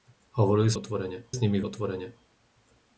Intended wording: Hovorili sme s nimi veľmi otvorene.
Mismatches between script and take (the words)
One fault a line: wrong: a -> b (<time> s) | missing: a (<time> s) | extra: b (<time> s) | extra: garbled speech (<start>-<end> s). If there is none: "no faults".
wrong: sme -> otvorene (0.7 s)
missing: veľmi (1.6 s)